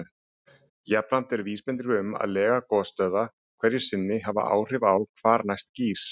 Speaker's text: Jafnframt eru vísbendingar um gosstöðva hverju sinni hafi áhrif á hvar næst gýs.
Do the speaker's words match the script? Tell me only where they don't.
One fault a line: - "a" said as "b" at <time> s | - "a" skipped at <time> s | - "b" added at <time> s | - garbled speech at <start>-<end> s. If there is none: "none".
- "að lega" added at 2.2 s